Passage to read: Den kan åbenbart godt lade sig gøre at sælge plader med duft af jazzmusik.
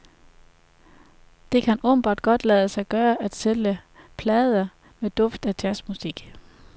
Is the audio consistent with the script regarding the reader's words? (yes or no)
no